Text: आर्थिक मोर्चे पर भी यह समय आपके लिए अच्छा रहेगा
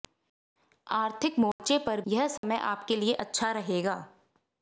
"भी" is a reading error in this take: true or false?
true